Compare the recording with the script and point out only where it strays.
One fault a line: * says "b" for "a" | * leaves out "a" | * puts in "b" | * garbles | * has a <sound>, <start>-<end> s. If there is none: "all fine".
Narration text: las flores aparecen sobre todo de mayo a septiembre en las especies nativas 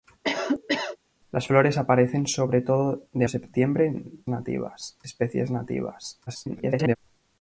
* has a cough, 0.2-1.0 s
* leaves out "mayo"
* says "nativas" for "las"
* garbles